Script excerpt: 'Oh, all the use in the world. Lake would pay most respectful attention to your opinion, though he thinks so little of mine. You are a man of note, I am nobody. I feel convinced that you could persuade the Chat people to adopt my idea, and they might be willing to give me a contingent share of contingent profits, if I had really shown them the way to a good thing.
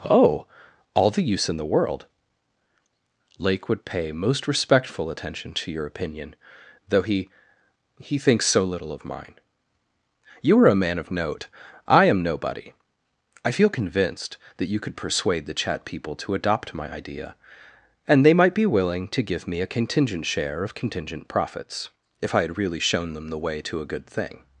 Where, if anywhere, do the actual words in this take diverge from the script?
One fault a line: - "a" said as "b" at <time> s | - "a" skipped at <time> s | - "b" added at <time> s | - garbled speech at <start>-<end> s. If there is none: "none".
- "he" added at 8.0 s